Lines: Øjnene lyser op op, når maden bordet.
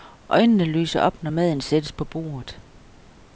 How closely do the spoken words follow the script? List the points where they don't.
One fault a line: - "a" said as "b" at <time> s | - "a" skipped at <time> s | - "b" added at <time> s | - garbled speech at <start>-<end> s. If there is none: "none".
- "op" skipped at 1.2 s
- "sættes på" added at 1.6 s